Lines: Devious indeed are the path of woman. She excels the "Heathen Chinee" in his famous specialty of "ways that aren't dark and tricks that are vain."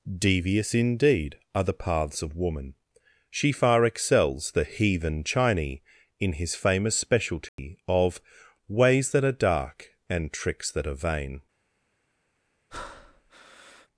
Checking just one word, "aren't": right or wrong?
wrong